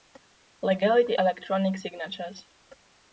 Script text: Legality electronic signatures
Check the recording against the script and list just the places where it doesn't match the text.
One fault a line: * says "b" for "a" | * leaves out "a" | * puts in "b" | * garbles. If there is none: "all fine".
all fine